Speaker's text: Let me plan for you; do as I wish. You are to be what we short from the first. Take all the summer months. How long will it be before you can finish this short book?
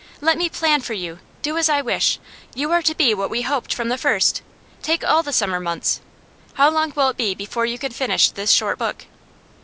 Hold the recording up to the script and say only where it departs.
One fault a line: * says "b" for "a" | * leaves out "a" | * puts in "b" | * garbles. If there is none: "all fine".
* says "hoped" for "short"